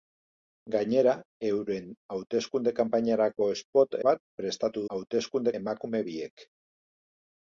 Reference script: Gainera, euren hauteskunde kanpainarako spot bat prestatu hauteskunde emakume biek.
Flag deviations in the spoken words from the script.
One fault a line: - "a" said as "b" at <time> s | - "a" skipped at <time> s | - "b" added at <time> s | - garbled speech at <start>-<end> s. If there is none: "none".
none